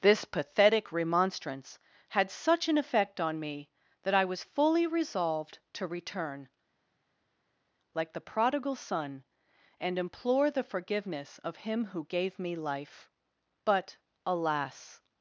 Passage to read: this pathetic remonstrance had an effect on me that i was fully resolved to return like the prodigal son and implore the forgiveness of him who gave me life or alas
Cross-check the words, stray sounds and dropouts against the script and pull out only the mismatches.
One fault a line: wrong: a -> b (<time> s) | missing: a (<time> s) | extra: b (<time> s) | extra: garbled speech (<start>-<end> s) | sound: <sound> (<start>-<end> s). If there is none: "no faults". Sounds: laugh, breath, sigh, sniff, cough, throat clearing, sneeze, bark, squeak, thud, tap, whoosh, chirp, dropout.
extra: such (2.3 s)
wrong: or -> but (13.6 s)